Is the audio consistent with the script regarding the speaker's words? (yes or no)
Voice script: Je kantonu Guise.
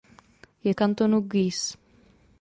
yes